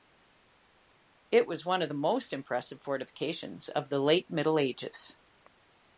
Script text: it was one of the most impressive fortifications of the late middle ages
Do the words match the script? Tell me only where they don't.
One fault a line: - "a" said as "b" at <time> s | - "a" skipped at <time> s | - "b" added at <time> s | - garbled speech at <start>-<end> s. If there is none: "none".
none